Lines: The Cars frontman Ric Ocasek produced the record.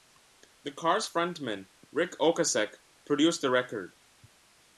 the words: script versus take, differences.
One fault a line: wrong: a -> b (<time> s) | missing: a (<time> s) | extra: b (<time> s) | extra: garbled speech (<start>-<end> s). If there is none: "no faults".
no faults